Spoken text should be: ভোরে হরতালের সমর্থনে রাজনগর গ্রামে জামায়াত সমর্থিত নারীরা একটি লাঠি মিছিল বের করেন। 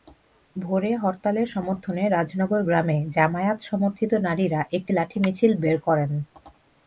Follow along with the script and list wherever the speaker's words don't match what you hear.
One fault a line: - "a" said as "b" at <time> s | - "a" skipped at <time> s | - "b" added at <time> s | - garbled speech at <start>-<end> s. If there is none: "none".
none